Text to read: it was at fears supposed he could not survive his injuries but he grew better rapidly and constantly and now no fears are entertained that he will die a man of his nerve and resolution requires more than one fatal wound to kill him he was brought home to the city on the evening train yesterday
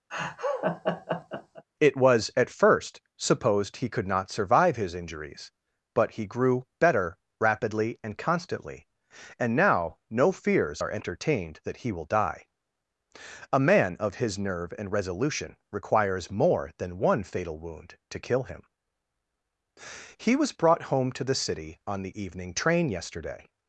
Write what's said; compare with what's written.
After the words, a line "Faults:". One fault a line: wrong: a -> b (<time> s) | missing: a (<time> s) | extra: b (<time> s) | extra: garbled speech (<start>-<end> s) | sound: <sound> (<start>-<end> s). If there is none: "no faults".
it was at first supposed he could not survive his injuries but he grew better rapidly and constantly and now no fears are entertained that he will die a man of his nerve and resolution requires more than one fatal wound to kill him he was brought home to the city on the evening train yesterday
Faults:
sound: laugh (0.1-1.6 s)
wrong: fears -> first (2.5 s)